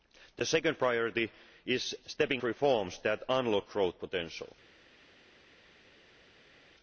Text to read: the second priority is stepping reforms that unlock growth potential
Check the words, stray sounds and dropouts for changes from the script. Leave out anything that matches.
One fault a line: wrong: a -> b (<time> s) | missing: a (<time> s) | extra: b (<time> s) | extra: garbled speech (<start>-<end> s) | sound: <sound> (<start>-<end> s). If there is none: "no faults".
no faults